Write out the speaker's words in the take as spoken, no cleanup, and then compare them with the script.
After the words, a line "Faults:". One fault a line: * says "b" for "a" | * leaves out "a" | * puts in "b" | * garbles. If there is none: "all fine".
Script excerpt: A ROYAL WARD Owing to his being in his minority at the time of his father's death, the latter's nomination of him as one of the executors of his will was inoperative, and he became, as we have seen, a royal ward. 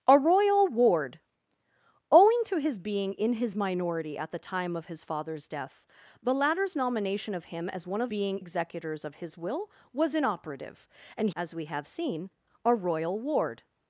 A ROYAL WARD Owing to his being in his minority at the time of his father's death, the latter's nomination of him as one of being executors of his will was inoperative, and as we have seen, a royal ward.
Faults:
* says "being" for "the"
* leaves out "he became"